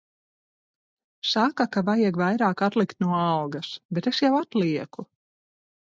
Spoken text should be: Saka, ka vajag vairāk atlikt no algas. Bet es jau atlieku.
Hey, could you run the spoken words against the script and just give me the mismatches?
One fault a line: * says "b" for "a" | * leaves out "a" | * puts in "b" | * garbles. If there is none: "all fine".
all fine